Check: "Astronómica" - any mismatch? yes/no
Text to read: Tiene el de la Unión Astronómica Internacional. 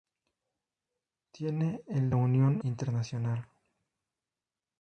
yes